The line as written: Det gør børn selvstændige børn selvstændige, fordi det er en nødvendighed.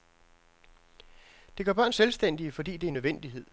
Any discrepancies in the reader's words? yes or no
yes